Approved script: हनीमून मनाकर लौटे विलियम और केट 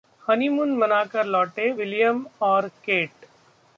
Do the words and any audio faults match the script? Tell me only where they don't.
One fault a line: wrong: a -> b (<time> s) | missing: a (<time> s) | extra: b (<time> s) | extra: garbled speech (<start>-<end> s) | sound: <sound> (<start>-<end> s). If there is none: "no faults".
no faults